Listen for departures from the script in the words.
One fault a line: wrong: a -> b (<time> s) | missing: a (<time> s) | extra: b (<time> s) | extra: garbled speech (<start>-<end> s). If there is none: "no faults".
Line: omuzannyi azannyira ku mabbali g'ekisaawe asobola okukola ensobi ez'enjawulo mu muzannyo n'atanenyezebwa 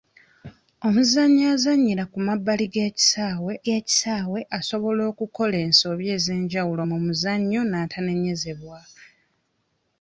extra: g'ekisaawe (3.6 s)